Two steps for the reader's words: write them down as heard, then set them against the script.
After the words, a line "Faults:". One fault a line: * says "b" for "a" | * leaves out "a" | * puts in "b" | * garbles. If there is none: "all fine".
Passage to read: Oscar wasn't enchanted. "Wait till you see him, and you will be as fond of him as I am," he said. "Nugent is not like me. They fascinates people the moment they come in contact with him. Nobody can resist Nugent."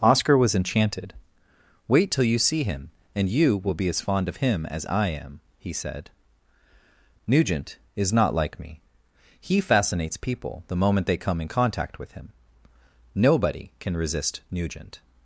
Oscar was enchanted. "Wait till you see him, and you will be as fond of him as I am," he said. "Nugent is not like me. He fascinates people the moment they come in contact with him. Nobody can resist Nugent."
Faults:
* says "was" for "wasn't"
* says "He" for "They"